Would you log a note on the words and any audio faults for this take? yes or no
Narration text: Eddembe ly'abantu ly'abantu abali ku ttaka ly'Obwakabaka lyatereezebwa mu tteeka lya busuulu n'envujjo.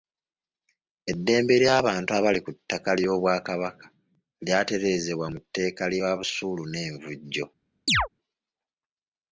yes